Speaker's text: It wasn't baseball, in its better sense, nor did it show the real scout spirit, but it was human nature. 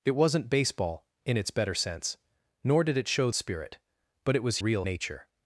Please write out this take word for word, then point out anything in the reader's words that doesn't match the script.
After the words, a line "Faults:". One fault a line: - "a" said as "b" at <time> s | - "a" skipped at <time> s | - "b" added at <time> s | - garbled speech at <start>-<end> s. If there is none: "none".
It wasn't baseball, in its better sense, nor did it show spirit, but it was real nature.
Faults:
- "the real scout" skipped at 3.3 s
- "human" said as "real" at 4.6 s